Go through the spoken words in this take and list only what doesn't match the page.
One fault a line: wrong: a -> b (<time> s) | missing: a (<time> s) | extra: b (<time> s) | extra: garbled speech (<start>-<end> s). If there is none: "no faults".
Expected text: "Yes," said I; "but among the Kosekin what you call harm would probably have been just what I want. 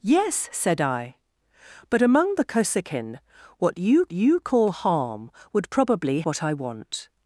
extra: you (4.1 s)
missing: have been just (6.2 s)